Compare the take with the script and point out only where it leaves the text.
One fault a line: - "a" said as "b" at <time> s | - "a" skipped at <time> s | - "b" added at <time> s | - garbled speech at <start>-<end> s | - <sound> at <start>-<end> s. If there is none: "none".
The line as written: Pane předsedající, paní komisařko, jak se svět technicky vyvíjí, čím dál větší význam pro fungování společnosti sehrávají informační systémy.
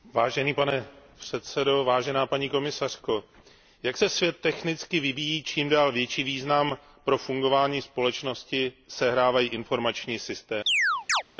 - chirp at 10.7-11.2 s